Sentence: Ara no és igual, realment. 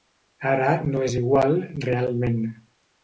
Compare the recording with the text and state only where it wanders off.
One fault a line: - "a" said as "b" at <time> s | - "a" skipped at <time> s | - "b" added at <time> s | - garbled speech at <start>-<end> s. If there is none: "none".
none